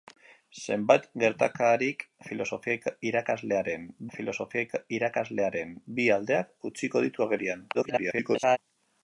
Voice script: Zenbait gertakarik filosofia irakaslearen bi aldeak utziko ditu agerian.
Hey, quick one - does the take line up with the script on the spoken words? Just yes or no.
no